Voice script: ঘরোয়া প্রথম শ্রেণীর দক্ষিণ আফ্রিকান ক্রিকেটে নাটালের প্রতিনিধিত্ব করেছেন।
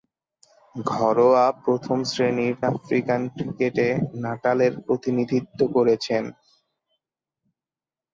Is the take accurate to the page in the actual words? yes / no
no